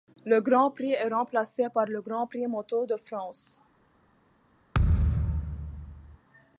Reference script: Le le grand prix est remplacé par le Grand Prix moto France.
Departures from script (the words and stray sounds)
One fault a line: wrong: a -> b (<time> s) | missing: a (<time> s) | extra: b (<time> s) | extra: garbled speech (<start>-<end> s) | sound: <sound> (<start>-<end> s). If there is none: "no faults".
missing: le (0.4 s)
extra: de (2.9 s)
sound: thud (4.7-6.2 s)